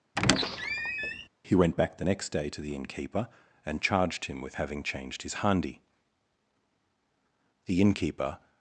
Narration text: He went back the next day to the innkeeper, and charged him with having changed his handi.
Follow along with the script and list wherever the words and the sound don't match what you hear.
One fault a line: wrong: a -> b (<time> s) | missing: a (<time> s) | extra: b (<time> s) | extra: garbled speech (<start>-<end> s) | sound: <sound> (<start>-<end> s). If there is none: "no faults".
sound: squeak (0.2-1.3 s)
extra: The innkeeper (7.7 s)